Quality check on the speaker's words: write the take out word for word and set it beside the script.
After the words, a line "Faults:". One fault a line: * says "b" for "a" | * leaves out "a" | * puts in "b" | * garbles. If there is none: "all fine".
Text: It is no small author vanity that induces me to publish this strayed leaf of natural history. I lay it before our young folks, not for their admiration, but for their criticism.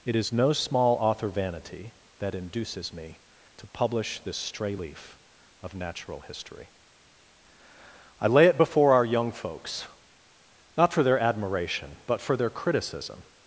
It is no small author vanity that induces me to publish this stray leaf of natural history. I lay it before our young folks, not for their admiration, but for their criticism.
Faults:
* says "stray" for "strayed"